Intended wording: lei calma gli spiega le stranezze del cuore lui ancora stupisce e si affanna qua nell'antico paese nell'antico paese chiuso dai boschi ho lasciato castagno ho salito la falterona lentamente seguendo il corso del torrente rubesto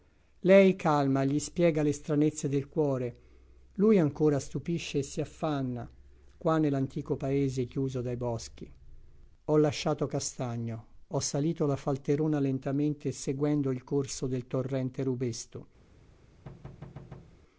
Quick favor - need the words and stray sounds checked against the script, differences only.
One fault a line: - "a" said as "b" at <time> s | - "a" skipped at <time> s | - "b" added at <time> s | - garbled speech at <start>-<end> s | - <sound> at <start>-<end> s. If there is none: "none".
- "nell'antico paese" skipped at 7.7 s
- thud at 16.4-17.4 s